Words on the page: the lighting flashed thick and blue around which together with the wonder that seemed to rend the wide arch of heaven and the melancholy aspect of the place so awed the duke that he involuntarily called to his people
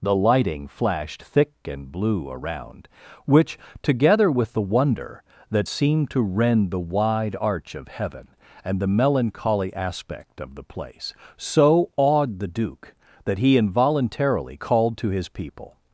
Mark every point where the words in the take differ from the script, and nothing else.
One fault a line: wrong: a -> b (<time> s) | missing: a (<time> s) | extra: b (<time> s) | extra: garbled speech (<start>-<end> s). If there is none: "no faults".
no faults